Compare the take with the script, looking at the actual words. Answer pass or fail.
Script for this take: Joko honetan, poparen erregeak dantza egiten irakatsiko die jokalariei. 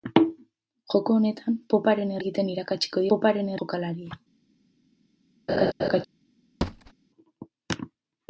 fail